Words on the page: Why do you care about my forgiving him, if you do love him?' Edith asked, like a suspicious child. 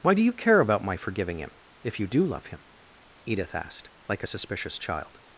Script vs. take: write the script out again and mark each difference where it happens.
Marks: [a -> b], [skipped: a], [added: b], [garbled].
Why do you care about my forgiving him, if you do love him?' Edith asked, like a suspicious child.